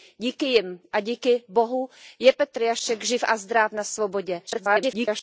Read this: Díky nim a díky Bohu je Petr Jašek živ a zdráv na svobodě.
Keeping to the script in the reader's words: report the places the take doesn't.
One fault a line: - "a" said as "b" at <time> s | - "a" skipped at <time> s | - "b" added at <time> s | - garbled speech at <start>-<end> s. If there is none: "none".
- garbled speech at 4.5-5.2 s